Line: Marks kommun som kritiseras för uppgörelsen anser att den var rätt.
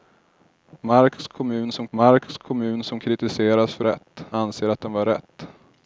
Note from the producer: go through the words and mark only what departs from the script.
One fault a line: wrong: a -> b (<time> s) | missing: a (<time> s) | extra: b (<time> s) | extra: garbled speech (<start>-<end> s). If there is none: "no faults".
extra: marks kommun som (1.9 s)
wrong: uppgörelsen -> rätt (3.8 s)